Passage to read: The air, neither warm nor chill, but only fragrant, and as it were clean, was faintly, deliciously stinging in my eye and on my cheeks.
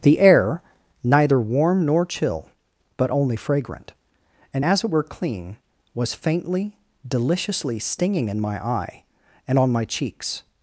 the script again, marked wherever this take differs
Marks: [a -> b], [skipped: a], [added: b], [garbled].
The air, neither warm nor chill, but only fragrant, and as it were clean, was faintly, deliciously stinging in my eye and on my cheeks.